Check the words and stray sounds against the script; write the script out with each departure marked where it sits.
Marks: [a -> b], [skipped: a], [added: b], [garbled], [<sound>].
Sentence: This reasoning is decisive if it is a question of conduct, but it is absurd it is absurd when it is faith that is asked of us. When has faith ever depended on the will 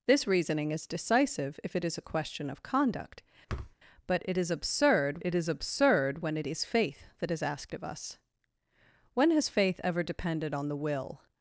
This reasoning is decisive if it is a question of conduct, [thud] but it is absurd it is absurd when it is faith that is asked of us. When has faith ever depended on the will